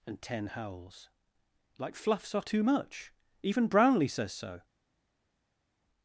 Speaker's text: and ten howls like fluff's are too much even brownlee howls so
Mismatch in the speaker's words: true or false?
true